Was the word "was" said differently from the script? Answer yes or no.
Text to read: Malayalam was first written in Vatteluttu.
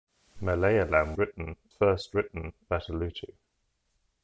yes